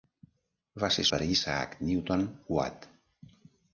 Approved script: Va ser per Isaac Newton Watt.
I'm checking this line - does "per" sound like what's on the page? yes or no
yes